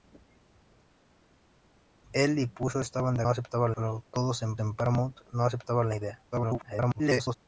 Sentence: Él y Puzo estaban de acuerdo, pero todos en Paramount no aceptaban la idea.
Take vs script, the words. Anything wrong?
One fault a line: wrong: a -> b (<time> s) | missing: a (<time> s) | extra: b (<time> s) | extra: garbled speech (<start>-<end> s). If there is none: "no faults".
wrong: acuerdo -> aceptaban (3.3 s)
extra: en (4.6 s)
extra: garbled speech (6.3-7.4 s)